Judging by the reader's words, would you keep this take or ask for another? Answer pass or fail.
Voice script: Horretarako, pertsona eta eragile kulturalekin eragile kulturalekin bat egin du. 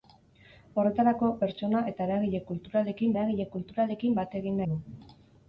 pass